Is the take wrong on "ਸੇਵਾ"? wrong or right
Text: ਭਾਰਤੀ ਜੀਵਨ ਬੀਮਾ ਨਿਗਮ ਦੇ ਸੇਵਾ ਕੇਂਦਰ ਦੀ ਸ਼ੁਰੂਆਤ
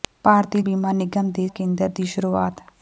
wrong